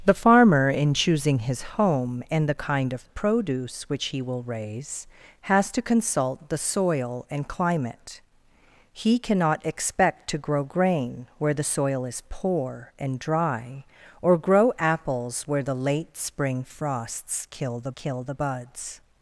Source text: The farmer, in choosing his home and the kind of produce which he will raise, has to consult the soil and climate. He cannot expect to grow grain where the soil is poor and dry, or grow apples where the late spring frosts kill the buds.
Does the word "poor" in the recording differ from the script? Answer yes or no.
no